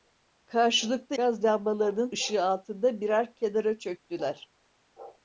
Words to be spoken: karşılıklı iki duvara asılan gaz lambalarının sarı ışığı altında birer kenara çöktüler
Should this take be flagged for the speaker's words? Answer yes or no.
yes